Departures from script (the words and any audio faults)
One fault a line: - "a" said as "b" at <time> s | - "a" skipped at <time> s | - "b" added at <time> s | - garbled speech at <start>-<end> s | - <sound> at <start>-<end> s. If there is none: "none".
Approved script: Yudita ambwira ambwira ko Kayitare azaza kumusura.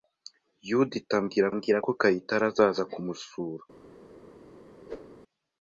- whoosh at 4.9-5.2 s